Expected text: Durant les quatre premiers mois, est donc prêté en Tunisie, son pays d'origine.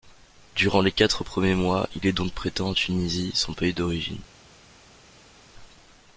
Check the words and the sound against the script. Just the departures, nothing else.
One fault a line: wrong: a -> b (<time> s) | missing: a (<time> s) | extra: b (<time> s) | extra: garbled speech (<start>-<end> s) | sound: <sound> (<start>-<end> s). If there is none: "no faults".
extra: il (1.9 s)